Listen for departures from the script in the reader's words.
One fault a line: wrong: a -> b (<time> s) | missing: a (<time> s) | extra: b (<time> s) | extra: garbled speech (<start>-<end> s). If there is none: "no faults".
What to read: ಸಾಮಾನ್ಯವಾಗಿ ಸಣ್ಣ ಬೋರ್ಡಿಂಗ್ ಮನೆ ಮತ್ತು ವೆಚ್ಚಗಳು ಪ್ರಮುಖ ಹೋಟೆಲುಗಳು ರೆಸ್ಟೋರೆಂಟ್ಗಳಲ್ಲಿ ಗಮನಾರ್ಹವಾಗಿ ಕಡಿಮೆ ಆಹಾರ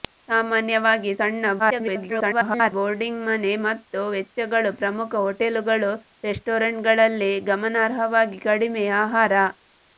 extra: garbled speech (1.6-2.7 s)